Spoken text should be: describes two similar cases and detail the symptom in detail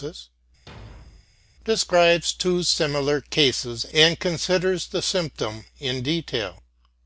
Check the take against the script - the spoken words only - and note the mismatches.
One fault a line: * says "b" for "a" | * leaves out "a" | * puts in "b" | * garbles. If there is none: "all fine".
* says "considers" for "detail"